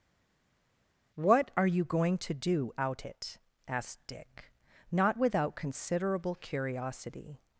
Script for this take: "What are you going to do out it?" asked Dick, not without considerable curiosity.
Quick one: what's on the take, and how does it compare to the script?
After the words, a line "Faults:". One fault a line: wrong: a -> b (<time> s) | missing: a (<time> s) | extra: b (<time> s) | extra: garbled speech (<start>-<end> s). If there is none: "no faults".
"What are you going to do out it?" asked Dick, not without considerable curiosity.
Faults:
no faults